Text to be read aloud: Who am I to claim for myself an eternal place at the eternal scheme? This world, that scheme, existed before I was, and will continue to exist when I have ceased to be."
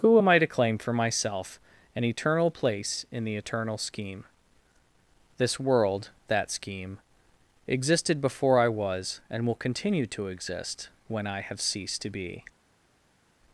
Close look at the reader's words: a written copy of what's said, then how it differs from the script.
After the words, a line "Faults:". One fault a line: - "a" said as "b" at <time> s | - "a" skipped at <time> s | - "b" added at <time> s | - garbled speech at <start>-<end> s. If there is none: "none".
Who am I to claim for myself an eternal place in the eternal scheme? This world, that scheme, existed before I was, and will continue to exist when I have ceased to be."
Faults:
- "at" said as "in" at 3.1 s